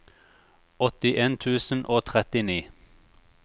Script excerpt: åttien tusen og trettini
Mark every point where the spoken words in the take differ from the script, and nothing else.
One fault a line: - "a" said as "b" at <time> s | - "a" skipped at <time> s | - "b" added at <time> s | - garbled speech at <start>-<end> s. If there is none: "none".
none